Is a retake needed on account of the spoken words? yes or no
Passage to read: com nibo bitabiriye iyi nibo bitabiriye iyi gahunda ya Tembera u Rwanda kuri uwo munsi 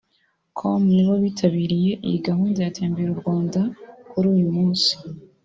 yes